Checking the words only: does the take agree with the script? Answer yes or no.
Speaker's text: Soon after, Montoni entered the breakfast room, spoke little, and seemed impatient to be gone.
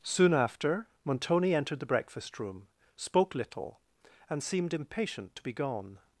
yes